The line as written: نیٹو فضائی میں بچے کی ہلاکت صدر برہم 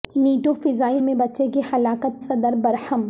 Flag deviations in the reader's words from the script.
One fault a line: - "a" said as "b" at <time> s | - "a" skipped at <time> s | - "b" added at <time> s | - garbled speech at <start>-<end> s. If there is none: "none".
none